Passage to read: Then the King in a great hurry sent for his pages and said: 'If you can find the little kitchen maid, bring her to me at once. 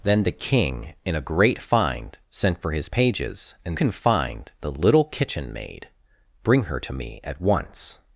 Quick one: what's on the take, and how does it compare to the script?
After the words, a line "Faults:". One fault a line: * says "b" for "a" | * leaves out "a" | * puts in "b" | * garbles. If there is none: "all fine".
Then the King in a great find sent for his pages and can find the little kitchen maid, bring her to me at once.
Faults:
* says "find" for "hurry"
* leaves out "said If you"